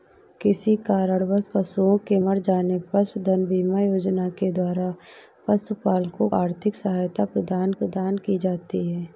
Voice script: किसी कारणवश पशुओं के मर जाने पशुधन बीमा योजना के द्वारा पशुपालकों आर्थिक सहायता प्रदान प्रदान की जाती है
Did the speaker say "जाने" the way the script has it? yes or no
yes